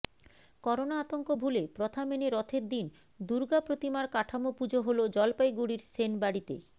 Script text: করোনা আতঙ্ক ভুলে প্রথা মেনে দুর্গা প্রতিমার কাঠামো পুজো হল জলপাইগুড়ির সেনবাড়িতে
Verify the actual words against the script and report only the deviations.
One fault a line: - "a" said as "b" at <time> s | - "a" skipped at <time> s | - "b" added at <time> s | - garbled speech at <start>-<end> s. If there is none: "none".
- "রথের দিন" added at 2.3 s